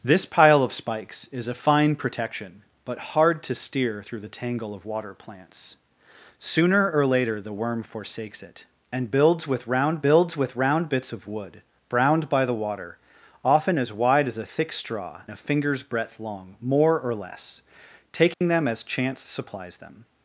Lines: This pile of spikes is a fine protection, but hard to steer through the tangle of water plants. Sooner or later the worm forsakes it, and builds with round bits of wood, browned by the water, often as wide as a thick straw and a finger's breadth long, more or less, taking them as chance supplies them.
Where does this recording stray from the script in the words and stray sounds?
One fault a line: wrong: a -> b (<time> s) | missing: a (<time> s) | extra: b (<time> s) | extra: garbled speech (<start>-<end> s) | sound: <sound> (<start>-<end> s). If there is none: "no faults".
extra: builds with round (10.0 s)
missing: and (15.2 s)
sound: dropout (18.3-18.4 s)